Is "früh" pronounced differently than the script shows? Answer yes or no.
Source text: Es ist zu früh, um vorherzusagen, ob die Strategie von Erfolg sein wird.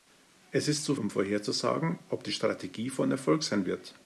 yes